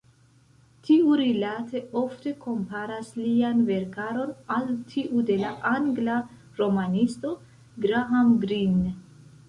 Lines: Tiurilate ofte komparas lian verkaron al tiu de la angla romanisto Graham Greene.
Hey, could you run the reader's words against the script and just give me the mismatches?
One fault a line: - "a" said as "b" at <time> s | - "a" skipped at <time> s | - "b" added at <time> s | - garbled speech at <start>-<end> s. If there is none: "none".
none